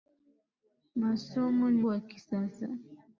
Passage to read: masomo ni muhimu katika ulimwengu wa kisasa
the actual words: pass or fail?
fail